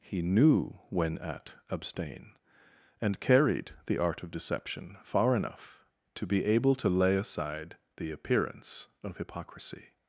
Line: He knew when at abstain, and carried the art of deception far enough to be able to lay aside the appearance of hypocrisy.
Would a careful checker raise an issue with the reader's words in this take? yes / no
no